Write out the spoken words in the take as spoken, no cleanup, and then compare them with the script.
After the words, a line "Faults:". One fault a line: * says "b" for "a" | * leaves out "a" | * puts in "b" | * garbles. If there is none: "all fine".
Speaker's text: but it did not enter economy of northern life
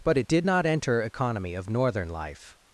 but it did not enter economy of northern life
Faults:
all fine